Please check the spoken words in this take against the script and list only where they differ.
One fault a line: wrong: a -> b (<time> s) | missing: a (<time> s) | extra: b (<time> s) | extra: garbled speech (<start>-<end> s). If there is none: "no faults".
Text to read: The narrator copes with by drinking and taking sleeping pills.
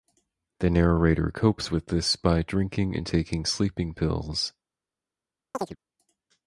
extra: this (1.9 s)